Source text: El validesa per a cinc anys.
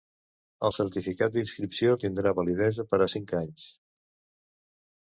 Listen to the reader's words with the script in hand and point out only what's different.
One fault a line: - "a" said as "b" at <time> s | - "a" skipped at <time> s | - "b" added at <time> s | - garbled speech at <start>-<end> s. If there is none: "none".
- "certificat d'inscripció tindrà" added at 0.7 s